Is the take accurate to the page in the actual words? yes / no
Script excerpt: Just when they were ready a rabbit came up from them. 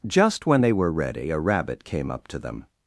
no